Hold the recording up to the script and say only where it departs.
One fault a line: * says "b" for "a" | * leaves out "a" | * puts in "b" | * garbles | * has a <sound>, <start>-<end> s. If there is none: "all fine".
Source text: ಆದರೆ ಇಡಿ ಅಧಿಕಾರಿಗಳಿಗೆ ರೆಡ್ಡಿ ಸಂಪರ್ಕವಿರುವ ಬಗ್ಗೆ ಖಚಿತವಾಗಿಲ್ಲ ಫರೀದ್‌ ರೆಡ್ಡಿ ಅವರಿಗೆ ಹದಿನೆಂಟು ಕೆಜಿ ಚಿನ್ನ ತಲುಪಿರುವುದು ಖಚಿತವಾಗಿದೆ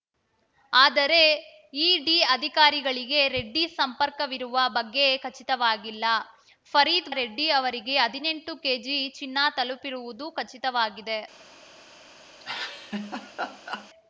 * has a laugh, 12.4-13.9 s